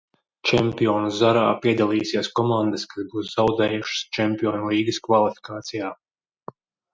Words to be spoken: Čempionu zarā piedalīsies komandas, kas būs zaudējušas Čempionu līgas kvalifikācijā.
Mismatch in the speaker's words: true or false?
false